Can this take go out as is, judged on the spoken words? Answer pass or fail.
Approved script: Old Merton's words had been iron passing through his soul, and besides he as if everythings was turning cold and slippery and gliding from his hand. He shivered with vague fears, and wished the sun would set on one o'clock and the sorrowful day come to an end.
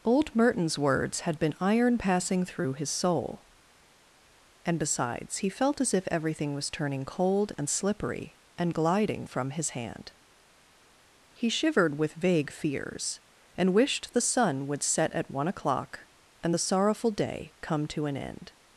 fail